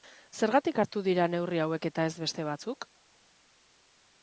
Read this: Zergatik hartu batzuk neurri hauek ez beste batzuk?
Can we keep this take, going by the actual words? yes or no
no